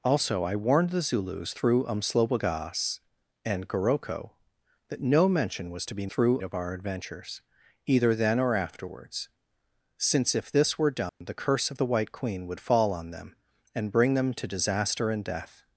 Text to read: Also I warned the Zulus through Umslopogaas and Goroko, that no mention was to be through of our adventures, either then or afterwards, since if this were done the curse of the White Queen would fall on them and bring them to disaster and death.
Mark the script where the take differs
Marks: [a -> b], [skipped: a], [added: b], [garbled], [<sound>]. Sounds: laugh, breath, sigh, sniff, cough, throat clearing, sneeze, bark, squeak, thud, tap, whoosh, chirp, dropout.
Also I warned the Zulus through Umslopogaas and Goroko, that no mention was to be through of our adventures, either then or afterwards, since if this were done [dropout] the curse of the White Queen would fall on them and bring them to disaster and death.